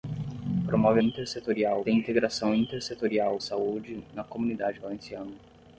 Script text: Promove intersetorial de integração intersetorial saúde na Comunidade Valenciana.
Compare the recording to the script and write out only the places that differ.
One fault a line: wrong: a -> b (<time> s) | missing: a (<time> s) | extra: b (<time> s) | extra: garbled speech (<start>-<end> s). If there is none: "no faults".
no faults